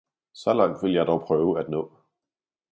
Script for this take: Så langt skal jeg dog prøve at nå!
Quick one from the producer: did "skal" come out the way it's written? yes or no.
no